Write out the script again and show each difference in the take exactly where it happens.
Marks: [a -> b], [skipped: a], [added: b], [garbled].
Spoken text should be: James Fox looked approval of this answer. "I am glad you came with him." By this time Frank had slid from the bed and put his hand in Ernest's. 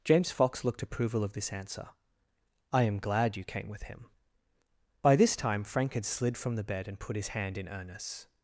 James Fox looked approval of this answer. "I am glad you came with him." By this time Frank had slid from the bed and put his hand in Ernest's.